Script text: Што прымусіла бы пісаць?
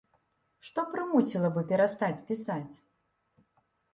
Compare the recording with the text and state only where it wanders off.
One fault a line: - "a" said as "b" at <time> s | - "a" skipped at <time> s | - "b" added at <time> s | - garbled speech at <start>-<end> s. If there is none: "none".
- "перастаць" added at 1.7 s